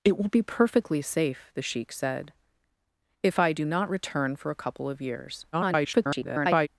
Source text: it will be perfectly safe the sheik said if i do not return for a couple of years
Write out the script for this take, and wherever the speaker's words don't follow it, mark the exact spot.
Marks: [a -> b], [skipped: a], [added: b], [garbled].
it will be perfectly safe the sheik said if i do not return for a couple of years [garbled]